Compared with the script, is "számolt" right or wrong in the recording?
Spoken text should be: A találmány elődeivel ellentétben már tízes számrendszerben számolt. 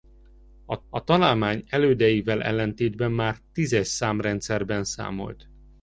right